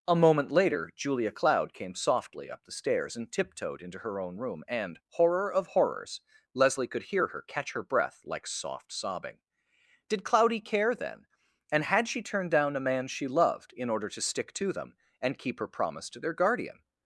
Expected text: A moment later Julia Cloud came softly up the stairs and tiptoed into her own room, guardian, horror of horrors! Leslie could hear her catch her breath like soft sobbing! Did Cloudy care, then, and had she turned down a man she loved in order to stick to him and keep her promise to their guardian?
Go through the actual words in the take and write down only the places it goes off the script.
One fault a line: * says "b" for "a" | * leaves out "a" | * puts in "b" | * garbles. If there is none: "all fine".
* says "and" for "guardian"
* says "them" for "him"